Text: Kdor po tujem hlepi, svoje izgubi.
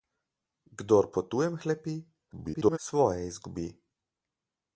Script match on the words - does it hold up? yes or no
no